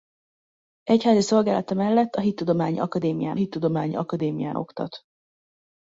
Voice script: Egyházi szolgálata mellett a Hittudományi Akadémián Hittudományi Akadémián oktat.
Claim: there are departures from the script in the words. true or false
false